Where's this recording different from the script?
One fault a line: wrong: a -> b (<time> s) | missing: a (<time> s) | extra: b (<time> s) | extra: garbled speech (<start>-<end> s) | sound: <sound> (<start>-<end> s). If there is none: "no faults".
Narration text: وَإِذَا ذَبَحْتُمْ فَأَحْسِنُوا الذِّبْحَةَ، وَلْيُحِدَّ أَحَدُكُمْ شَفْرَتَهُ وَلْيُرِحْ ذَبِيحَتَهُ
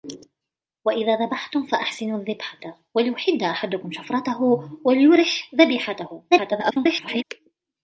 extra: garbled speech (6.3-7.2 s)